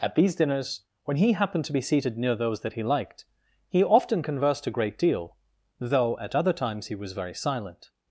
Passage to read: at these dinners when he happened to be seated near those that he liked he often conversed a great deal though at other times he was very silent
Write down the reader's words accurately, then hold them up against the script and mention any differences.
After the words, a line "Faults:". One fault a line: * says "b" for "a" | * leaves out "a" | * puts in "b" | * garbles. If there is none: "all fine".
at these dinners when he happened to be seated near those that he liked he often conversed a great deal though at other times he was very silent
Faults:
all fine